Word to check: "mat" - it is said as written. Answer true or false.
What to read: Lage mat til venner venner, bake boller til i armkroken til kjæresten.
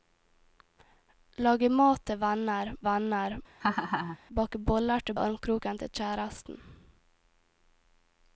true